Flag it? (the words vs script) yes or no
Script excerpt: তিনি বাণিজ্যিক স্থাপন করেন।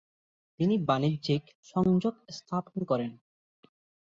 yes